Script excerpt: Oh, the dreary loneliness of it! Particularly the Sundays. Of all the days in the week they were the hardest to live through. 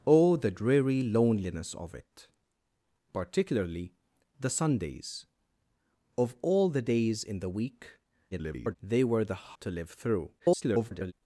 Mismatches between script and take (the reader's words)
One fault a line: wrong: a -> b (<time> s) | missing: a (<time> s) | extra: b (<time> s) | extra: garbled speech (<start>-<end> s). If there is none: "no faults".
extra: garbled speech (8.3-8.8 s)
missing: hardest (9.6 s)
extra: garbled speech (10.4-11.1 s)